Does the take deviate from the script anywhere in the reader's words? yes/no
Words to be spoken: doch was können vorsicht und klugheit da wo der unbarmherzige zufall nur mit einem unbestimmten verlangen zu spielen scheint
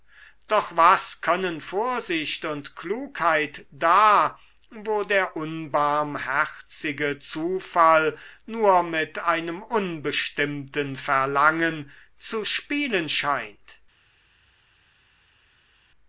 no